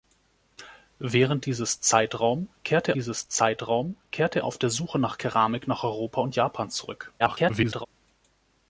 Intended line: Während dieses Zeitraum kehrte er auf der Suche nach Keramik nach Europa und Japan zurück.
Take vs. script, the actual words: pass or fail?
fail